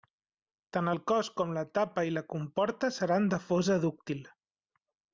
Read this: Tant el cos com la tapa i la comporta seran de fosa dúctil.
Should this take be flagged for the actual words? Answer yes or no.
no